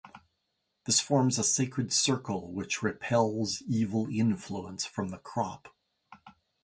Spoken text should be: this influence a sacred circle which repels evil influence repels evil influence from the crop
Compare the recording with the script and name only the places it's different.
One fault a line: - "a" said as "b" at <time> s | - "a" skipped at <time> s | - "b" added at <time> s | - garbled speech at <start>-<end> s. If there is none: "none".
- "influence" said as "forms" at 1.0 s
- "repels evil influence" skipped at 4.9 s